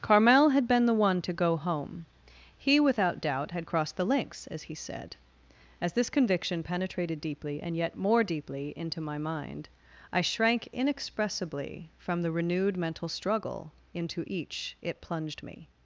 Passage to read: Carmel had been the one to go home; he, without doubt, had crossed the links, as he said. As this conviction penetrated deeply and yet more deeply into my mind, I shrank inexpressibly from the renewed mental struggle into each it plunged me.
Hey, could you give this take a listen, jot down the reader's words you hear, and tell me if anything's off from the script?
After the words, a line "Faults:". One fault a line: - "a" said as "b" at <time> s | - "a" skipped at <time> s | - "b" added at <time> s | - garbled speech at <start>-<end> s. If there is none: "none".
Carmel had been the one to go home; he, without doubt, had crossed the links, as he said. As this conviction penetrated deeply and yet more deeply into my mind, I shrank inexpressibly from the renewed mental struggle into each it plunged me.
Faults:
none